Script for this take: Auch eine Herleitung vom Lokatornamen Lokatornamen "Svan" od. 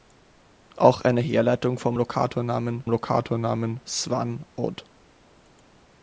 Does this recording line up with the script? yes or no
yes